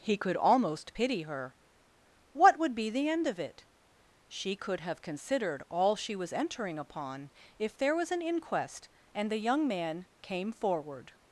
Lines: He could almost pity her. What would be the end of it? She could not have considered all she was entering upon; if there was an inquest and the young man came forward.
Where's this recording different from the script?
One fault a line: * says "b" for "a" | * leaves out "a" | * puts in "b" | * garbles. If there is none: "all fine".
* leaves out "not"